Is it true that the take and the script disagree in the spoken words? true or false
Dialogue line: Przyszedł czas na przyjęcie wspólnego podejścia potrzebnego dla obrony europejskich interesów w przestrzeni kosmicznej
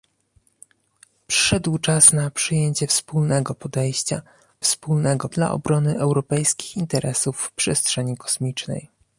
true